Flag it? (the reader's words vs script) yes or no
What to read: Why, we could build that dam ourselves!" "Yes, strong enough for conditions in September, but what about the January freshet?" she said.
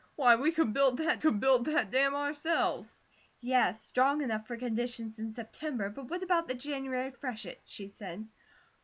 yes